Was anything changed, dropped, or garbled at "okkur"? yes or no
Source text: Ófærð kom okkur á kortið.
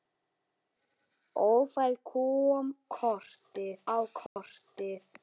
yes